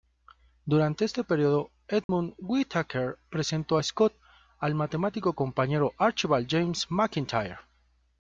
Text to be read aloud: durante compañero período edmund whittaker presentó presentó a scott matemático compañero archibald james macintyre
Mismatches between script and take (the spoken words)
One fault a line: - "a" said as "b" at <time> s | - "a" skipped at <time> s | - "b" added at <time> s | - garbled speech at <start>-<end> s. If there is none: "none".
- "compañero" said as "este" at 1.1 s
- "presentó" skipped at 3.8 s
- "al" added at 4.6 s